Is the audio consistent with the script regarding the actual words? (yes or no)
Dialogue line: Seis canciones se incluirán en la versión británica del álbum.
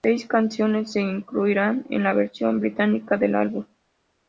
yes